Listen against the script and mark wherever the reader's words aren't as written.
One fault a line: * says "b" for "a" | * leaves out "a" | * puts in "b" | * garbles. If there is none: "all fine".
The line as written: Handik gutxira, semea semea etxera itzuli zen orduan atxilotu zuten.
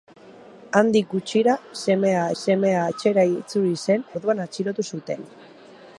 all fine